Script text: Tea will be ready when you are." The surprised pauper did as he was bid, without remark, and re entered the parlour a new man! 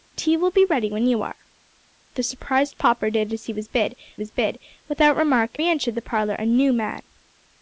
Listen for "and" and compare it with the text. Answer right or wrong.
wrong